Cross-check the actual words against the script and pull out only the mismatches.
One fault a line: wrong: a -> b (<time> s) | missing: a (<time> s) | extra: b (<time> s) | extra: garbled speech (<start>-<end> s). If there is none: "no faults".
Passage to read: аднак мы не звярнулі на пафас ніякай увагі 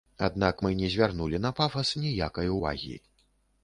no faults